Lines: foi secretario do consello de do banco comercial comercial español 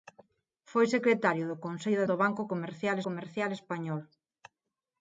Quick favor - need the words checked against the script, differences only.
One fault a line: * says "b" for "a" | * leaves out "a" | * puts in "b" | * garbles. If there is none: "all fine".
all fine